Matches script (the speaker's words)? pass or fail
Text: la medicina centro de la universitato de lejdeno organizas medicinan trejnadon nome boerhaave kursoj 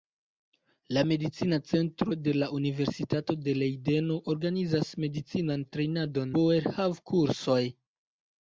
fail